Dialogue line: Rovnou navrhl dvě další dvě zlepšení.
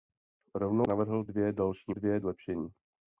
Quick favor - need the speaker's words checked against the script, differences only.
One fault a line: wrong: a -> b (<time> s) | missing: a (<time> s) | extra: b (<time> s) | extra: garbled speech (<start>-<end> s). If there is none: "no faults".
no faults